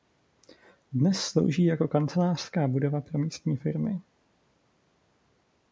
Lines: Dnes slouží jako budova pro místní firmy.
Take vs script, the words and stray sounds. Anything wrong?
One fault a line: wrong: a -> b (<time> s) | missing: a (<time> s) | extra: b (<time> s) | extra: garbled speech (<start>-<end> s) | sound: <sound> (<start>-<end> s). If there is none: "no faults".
extra: kancelářská (1.9 s)